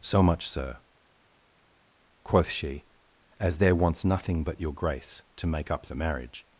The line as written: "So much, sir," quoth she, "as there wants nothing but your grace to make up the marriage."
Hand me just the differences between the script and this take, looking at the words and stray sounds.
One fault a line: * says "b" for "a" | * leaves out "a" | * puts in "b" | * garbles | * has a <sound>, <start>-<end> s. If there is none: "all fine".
all fine